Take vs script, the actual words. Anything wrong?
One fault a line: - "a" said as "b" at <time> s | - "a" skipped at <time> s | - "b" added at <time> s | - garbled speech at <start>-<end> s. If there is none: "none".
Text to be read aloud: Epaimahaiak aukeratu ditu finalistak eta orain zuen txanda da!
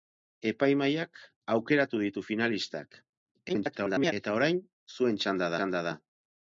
- garbled speech at 3.5-4.1 s
- "txanda" added at 5.6 s